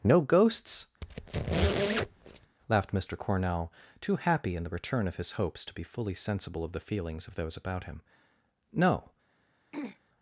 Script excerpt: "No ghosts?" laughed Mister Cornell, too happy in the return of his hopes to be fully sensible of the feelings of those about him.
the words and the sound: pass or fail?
fail